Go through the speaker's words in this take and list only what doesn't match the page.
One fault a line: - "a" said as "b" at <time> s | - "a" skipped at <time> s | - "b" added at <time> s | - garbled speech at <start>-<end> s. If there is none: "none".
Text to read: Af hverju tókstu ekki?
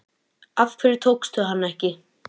- "hana" added at 1.5 s